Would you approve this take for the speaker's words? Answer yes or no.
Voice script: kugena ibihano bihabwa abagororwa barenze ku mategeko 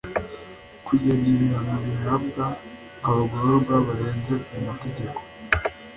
yes